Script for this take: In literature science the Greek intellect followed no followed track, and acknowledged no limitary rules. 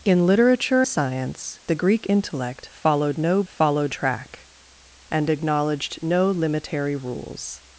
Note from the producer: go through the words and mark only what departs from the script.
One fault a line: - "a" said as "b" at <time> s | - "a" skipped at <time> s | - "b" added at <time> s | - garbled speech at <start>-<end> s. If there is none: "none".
none